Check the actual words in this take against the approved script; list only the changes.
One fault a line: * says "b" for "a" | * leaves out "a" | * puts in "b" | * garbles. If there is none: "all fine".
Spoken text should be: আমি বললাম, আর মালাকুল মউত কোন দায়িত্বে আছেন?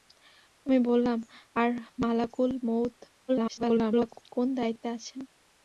* garbles